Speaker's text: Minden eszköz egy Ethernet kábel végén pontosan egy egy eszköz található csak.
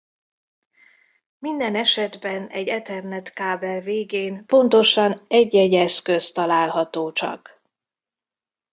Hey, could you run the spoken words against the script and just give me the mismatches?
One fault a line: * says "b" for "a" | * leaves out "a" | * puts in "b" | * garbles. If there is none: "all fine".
* says "esetben" for "eszköz"